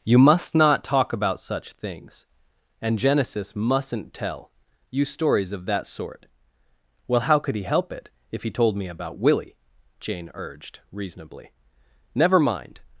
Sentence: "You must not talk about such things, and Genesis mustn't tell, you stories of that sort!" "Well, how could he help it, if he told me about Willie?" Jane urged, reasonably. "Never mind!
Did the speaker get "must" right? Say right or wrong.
right